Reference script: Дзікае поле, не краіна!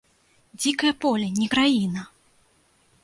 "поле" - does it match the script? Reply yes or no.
yes